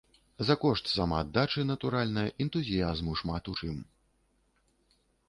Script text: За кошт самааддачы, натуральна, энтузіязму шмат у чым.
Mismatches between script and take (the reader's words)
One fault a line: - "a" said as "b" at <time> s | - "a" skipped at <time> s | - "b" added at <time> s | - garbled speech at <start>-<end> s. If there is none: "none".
none